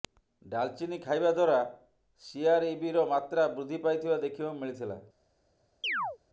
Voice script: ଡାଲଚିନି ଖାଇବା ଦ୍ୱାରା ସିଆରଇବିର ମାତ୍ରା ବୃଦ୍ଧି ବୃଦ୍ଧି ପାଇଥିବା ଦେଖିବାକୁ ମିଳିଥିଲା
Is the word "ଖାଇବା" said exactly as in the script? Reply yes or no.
yes